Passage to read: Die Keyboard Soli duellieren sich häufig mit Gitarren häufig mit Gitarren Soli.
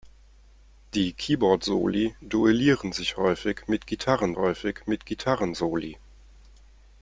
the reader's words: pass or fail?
pass